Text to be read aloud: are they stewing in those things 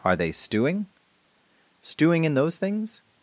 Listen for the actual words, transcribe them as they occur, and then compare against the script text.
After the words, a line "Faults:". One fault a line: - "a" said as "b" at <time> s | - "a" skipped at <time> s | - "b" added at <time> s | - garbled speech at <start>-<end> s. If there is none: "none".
are they stewing stewing in those things
Faults:
- "stewing" added at 1.8 s